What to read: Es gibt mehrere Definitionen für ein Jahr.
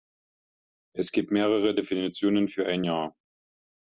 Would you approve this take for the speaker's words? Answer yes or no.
yes